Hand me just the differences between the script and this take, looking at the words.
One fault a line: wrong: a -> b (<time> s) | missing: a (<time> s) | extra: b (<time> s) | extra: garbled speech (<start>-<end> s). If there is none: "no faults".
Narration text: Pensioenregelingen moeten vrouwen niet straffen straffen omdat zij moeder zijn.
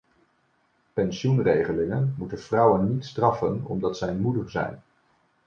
missing: straffen (3.6 s)